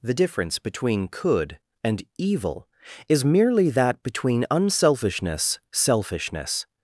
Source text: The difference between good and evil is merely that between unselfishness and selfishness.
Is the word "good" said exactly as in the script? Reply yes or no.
no